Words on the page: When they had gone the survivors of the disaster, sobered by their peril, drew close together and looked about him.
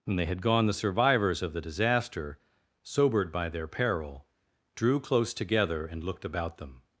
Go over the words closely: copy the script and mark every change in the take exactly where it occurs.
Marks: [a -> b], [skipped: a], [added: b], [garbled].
When they had gone the survivors of the disaster, sobered by their peril, drew close together and looked about [him. -> them]